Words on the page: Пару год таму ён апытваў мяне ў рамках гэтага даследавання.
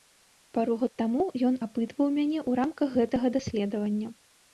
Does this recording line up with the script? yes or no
yes